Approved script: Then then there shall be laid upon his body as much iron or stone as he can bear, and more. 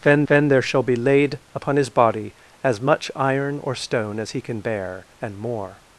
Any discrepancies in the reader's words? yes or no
no